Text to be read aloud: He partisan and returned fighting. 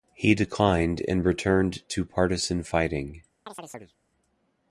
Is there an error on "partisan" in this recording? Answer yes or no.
yes